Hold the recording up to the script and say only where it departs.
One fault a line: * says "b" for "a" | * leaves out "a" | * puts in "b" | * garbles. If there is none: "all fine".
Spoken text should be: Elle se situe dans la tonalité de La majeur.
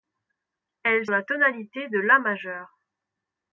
* leaves out "se situe dans"